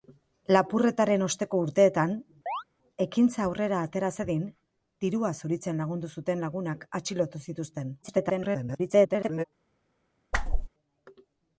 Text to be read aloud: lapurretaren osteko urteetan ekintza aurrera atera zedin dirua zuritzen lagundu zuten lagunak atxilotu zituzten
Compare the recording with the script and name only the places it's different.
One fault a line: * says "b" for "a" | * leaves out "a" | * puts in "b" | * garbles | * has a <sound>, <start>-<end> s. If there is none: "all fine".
* has a chirp, 2.5-2.6 s
* garbles
* has a whoosh, 10.3-10.7 s